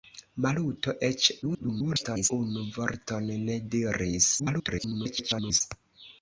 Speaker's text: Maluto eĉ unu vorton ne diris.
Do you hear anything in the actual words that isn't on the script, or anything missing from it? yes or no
yes